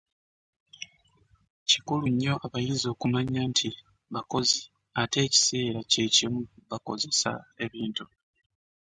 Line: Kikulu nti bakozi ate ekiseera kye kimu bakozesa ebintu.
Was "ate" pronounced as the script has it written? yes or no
yes